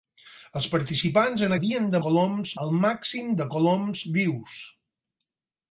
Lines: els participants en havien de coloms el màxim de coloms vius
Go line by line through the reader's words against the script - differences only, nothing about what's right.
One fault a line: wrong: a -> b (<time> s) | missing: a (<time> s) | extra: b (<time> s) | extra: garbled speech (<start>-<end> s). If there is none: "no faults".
no faults